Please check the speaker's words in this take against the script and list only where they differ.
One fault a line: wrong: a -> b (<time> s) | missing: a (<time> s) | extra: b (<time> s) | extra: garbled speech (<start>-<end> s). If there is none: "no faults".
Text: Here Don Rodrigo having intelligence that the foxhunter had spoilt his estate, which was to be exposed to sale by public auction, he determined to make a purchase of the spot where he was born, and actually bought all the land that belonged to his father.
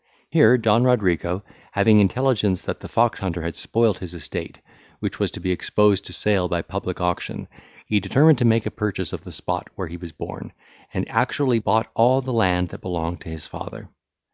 no faults